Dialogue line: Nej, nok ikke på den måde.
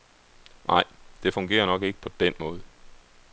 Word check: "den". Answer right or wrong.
right